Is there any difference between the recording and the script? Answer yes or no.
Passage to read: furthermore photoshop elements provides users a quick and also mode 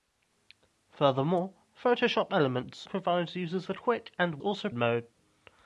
no